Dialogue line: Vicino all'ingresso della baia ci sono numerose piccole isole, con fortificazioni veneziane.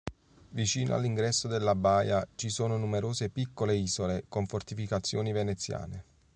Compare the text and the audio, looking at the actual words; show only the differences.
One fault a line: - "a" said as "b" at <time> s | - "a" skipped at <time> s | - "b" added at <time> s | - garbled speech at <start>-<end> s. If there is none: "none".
none